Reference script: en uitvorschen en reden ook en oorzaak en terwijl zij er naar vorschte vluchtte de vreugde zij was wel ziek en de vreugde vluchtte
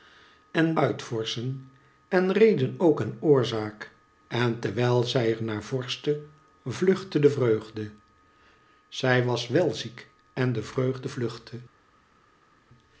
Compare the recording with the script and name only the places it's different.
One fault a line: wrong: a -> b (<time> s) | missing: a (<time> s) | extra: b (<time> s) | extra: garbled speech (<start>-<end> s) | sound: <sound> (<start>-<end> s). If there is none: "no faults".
no faults